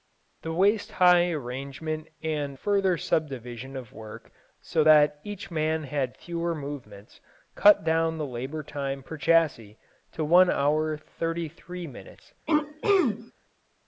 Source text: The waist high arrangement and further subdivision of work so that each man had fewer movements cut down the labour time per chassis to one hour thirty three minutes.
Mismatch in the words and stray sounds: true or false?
true